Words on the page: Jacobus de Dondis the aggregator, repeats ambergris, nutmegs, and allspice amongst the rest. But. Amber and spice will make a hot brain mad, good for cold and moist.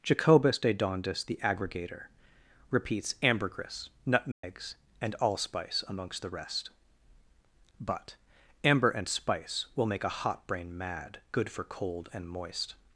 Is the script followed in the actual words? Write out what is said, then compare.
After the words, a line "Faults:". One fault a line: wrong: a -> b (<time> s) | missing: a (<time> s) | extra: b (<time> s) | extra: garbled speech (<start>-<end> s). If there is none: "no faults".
Jacobus de Dondis the aggregator, repeats ambergris, nutmegs, and allspice amongst the rest. But. Amber and spice will make a hot brain mad, good for cold and moist.
Faults:
no faults